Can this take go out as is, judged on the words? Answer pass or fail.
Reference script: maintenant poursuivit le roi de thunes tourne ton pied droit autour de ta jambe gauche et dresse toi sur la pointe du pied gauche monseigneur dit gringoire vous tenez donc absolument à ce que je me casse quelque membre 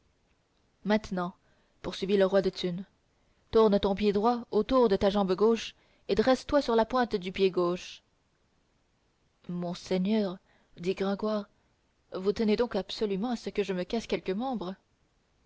pass